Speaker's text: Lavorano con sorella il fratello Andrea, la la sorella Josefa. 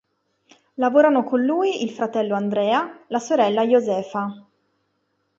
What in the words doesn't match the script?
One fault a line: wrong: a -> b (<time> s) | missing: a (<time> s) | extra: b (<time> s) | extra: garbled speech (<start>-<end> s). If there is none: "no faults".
wrong: sorella -> lui (1.4 s)
missing: la (3.2 s)